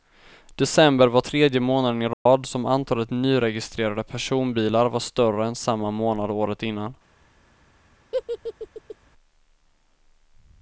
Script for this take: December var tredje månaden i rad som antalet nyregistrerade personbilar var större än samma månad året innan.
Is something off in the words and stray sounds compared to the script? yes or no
yes